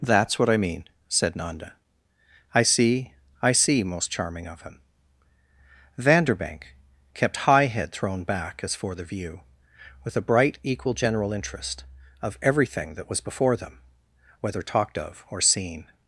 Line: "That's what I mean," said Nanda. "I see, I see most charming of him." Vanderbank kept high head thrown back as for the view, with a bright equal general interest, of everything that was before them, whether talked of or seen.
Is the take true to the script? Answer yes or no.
yes